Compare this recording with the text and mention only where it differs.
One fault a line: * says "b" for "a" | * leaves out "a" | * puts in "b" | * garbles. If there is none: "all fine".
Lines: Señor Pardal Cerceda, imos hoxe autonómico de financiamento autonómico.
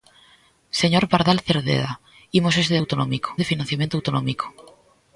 all fine